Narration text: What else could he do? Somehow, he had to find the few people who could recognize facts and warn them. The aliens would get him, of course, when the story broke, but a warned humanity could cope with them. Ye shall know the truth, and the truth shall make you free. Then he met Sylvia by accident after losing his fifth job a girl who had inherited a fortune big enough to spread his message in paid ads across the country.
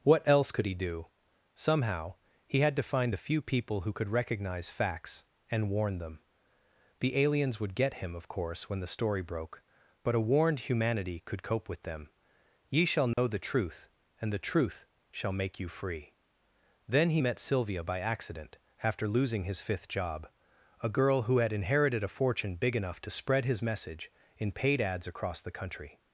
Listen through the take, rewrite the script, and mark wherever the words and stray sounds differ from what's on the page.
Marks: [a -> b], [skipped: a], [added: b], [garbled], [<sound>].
What else could he do? Somehow, he had to find the few people who could recognize facts and warn them. The aliens would get him, of course, when the story broke, but a warned humanity could cope with them. Ye shall know [dropout] the truth, and the truth shall make you free. Then he met Sylvia by accident after losing his fifth job a girl who had inherited a fortune big enough to spread his message in paid ads across the country.